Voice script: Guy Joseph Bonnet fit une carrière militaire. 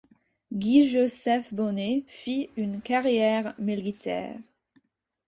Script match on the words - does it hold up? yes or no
yes